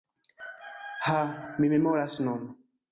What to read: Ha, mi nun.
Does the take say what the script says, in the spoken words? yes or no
no